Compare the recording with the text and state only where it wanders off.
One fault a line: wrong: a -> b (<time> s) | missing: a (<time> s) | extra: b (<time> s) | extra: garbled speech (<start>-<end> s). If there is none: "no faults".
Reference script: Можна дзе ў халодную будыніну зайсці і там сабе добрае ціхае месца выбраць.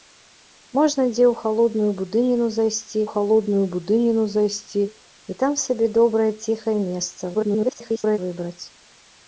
extra: халодную будыніну зайсці (3.1 s)
extra: garbled speech (7.3-8.2 s)